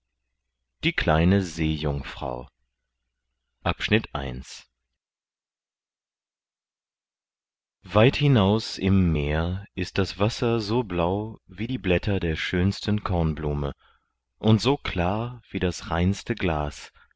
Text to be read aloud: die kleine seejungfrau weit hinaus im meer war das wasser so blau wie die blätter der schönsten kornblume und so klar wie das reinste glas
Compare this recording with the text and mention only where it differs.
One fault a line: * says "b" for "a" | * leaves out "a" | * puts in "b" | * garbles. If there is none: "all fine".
* says "ist" for "war"